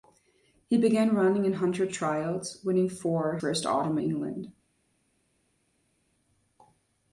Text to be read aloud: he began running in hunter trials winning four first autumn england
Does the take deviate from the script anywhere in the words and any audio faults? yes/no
no